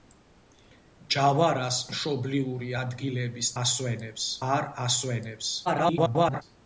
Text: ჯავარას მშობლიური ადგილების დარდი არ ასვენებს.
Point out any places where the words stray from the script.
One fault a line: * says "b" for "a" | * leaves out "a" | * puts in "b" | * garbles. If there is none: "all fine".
* says "ასვენებს" for "დარდი"
* garbles